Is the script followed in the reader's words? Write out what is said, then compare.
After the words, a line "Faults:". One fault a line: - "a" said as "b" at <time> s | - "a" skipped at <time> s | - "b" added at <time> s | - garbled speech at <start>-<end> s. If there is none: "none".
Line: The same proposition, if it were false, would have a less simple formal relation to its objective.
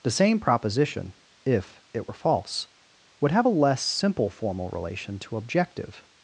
The same proposition, if it were false, would have a less simple formal relation to objective.
Faults:
- "its" skipped at 5.4 s